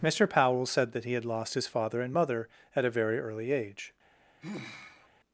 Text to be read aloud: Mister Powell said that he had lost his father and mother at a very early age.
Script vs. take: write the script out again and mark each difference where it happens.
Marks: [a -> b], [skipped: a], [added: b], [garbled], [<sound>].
Mister Powell said that he had lost his father and mother at a very early age. [sigh]